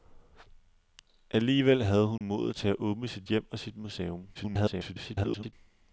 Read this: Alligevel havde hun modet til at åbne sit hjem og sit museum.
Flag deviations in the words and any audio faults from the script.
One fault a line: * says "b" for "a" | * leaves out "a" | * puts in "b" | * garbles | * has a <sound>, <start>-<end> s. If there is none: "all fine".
* has a dropout, 2.2-2.2 s
* garbles